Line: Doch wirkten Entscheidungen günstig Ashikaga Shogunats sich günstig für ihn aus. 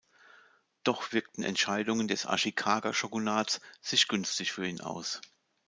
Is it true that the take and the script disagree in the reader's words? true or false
true